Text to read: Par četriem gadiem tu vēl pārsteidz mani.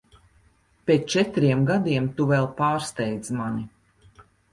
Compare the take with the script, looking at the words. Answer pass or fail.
fail